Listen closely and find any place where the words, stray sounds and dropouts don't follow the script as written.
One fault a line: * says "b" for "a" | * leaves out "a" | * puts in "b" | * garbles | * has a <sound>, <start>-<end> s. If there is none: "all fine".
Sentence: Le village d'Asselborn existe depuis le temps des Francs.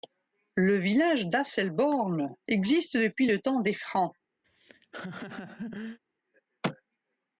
* has a laugh, 4.4-6.0 s